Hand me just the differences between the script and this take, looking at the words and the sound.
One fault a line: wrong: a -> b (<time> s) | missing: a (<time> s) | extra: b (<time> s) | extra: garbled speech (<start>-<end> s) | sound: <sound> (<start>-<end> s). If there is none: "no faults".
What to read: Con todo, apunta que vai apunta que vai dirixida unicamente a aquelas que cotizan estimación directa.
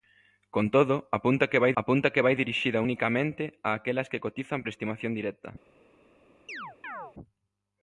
sound: chirp (6.5-7.1 s)